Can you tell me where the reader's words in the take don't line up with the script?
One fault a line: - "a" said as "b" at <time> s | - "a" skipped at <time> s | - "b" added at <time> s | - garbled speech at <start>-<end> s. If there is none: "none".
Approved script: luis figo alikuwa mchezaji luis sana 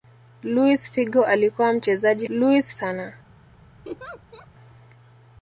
none